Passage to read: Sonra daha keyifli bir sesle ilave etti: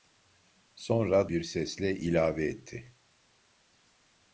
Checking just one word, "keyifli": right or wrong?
wrong